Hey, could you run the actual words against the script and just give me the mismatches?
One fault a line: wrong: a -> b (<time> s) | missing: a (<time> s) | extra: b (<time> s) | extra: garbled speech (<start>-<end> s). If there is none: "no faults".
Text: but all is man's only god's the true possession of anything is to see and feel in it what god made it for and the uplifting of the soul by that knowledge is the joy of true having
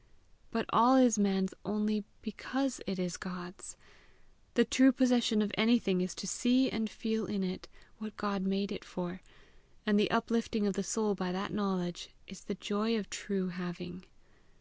extra: because it is (2.2 s)